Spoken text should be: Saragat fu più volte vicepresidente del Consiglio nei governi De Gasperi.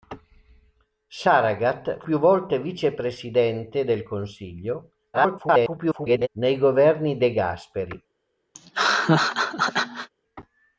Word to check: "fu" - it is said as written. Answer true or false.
false